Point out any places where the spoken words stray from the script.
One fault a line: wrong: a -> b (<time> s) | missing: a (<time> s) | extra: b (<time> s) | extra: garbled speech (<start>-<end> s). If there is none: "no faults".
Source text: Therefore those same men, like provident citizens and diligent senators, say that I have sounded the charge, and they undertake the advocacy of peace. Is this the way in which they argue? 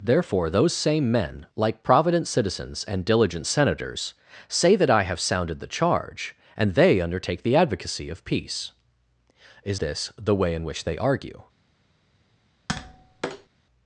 no faults